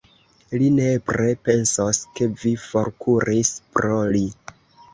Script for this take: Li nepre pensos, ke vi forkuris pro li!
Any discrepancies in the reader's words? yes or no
no